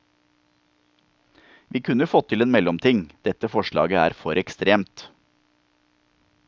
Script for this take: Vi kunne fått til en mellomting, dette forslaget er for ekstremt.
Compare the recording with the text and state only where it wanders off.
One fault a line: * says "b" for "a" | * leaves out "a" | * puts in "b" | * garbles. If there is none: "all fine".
all fine